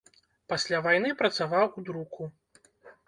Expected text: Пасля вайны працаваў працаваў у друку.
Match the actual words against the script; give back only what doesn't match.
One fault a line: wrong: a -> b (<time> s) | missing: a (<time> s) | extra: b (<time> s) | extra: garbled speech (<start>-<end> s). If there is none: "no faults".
missing: працаваў (1.7 s)